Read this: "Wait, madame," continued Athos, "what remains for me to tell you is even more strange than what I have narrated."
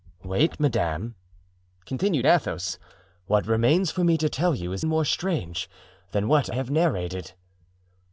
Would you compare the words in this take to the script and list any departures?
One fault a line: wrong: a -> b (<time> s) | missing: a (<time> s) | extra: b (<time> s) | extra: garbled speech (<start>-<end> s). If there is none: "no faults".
missing: even (4.9 s)
missing: I (6.5 s)